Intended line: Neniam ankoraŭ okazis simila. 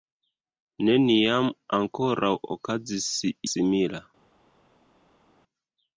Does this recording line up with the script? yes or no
yes